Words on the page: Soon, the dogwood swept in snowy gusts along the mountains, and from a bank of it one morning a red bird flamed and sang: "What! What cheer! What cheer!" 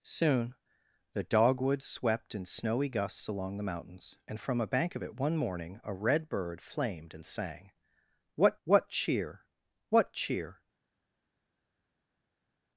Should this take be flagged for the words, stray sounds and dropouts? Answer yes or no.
no